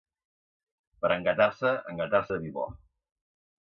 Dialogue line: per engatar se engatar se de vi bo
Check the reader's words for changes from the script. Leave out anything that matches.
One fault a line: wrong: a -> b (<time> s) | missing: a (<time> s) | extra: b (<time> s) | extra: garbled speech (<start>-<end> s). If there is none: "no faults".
missing: se (2.2 s)